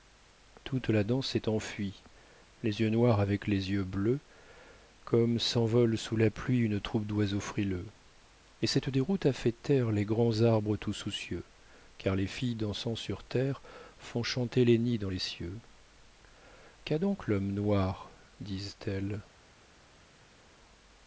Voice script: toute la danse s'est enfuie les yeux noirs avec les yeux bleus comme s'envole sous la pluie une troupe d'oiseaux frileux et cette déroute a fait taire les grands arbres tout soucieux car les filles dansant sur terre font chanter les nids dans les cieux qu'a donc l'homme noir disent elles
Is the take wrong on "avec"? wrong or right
right